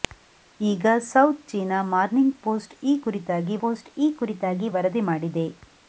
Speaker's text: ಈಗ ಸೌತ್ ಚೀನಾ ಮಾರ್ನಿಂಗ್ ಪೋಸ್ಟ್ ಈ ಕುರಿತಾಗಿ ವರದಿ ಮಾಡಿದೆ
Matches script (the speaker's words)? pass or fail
fail